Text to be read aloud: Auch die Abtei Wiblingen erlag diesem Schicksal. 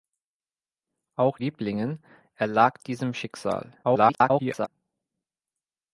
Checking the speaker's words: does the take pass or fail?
fail